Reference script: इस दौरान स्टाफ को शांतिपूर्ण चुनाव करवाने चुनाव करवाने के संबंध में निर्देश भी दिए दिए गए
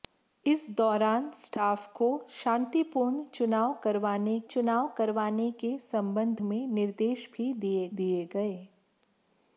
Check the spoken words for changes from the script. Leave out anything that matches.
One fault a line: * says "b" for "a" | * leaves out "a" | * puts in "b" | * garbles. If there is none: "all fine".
all fine